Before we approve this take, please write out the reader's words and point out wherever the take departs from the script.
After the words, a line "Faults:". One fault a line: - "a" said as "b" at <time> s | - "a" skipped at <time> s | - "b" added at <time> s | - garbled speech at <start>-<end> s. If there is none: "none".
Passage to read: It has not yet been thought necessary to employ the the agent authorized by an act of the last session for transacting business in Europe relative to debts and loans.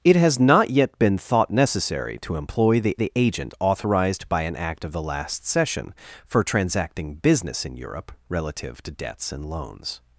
It has not yet been thought necessary to employ the the agent authorized by an act of the last session for transacting business in Europe relative to debts and loans.
Faults:
none